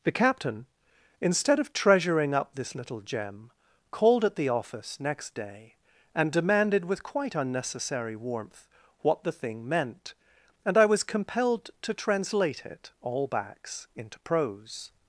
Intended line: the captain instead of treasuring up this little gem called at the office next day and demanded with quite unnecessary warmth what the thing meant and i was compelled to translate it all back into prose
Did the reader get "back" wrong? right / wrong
wrong